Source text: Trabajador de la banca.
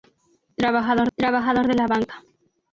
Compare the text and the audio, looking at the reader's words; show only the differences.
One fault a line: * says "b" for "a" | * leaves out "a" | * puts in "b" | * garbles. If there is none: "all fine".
* puts in "trabajador"